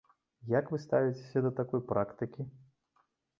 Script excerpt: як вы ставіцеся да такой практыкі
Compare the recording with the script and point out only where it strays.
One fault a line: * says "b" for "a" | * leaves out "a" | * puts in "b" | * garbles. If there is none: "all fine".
all fine